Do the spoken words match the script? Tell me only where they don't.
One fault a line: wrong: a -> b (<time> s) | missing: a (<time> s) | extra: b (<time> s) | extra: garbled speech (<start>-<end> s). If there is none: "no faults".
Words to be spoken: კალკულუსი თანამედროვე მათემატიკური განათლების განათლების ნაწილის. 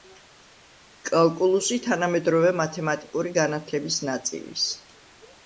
missing: განათლების (4.0 s)